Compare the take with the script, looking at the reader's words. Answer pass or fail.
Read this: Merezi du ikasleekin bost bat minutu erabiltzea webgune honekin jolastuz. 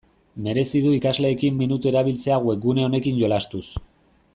fail